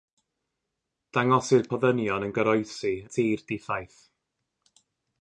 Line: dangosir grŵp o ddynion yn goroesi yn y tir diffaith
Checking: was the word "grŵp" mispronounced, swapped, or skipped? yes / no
yes